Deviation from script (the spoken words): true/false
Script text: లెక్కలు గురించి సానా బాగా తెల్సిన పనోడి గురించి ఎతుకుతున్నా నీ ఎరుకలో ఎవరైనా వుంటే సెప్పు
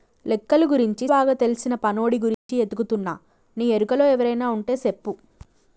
true